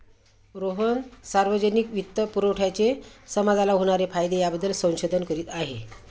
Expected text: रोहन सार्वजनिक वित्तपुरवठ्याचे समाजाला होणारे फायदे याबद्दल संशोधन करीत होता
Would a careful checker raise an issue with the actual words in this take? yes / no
yes